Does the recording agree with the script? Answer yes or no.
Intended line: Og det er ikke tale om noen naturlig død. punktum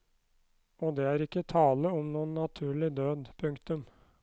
yes